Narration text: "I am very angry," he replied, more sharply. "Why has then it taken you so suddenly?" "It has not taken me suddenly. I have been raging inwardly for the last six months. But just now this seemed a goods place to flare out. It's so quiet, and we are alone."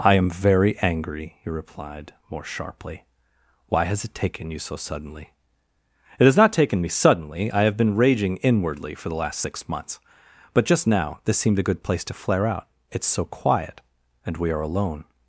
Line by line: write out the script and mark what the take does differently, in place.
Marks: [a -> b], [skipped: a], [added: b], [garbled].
"I am very angry," he replied, more sharply. "Why has [skipped: then] it taken you so suddenly?" "It has not taken me suddenly. I have been raging inwardly for the last six months. But just now this seemed a [goods -> good] place to flare out. It's so quiet, and we are alone."